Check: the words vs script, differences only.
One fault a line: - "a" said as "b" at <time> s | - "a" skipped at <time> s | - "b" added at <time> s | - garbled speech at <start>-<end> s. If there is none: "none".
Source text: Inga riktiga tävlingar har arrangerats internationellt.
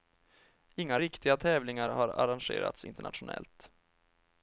none